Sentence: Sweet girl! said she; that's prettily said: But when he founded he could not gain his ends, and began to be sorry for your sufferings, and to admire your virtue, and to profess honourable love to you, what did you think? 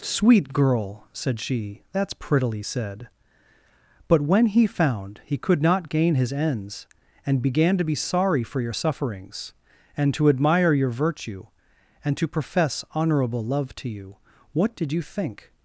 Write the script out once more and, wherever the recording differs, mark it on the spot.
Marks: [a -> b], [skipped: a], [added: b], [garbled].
Sweet girl! said she; that's prettily said: But when he [founded -> found] he could not gain his ends, and began to be sorry for your sufferings, and to admire your virtue, and to profess honourable love to you, what did you think?